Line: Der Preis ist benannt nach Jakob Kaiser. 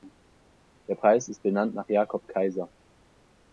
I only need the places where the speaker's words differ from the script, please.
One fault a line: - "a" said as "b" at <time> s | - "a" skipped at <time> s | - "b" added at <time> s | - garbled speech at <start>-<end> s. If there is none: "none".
none